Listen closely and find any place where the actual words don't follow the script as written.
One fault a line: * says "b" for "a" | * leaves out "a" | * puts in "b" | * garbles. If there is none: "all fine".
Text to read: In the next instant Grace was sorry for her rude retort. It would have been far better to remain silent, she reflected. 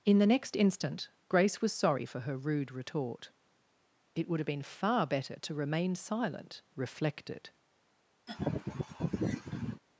* leaves out "she"